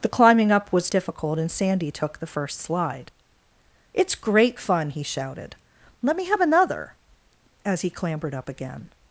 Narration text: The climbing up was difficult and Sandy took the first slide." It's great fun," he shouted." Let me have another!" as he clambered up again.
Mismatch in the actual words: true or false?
false